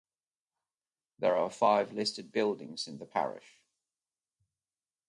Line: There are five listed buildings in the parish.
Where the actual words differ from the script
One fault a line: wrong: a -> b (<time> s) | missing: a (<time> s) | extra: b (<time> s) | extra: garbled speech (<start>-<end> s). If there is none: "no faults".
no faults